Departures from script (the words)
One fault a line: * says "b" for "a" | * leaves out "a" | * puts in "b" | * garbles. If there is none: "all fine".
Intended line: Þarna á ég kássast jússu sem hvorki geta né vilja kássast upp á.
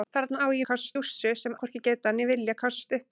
all fine